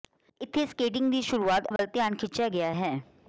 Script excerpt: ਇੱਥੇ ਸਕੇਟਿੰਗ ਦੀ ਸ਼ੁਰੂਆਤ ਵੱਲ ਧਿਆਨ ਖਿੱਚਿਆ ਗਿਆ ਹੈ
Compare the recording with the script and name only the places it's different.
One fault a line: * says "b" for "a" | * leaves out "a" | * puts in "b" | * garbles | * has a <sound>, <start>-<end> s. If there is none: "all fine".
* has a dropout, 1.8-1.8 s